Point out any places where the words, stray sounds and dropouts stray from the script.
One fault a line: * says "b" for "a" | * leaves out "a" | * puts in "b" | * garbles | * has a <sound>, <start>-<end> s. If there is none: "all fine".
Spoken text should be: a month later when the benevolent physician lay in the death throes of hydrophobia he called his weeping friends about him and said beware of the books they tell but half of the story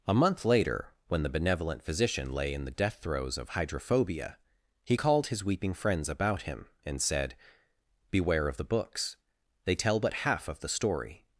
all fine